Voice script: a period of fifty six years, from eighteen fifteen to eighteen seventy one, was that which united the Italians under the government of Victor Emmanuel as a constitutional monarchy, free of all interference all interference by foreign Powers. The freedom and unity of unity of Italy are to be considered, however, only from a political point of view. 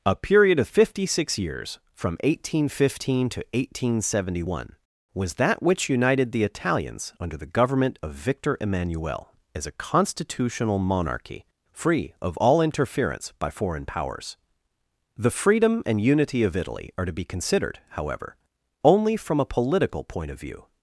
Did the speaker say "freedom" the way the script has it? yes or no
yes